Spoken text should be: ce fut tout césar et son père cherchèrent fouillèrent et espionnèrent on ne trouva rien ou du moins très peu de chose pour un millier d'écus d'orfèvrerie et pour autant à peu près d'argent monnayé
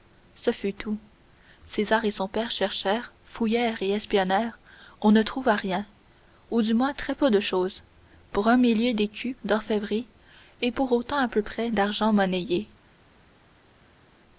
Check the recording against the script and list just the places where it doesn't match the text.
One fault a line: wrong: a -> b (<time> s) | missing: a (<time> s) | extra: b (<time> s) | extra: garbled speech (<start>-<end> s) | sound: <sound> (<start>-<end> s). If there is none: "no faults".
no faults